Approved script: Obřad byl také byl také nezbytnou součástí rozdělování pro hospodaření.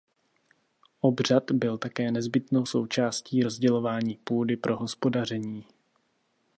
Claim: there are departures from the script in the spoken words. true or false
true